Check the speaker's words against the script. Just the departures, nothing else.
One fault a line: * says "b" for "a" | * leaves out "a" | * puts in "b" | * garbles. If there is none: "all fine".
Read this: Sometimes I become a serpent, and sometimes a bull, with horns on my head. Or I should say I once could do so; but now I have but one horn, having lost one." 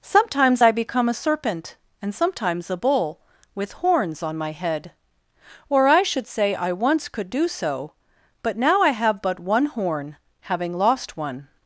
all fine